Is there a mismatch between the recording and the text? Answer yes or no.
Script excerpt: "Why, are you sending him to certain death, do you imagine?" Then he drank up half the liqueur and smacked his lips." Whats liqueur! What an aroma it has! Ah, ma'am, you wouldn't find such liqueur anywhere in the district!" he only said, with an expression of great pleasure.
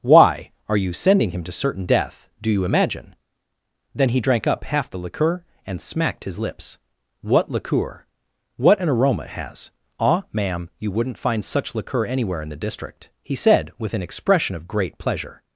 yes